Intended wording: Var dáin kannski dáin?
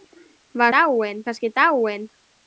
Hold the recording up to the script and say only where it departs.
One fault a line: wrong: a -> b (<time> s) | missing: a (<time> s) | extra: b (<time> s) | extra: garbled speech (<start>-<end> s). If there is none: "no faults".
no faults